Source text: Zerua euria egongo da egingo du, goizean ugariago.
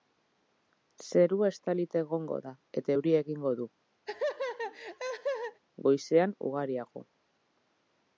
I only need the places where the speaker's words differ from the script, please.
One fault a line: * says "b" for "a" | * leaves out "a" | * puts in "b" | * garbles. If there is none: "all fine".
* says "estalita" for "euria"
* puts in "eta euria"